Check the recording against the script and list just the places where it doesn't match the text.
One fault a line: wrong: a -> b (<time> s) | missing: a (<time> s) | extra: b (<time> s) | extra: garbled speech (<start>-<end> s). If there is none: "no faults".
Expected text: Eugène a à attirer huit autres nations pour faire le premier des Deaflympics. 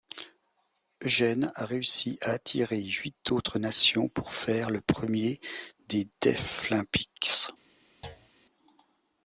extra: réussi (1.7 s)